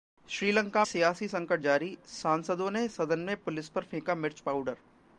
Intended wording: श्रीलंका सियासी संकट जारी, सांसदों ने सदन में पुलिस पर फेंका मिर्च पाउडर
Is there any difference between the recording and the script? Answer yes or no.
no